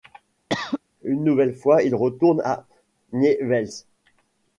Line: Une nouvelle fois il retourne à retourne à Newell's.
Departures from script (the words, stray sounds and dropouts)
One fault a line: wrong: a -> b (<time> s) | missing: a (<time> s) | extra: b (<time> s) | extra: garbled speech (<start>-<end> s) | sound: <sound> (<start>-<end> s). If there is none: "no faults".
sound: cough (0.5-0.8 s)
missing: retourne à (2.6 s)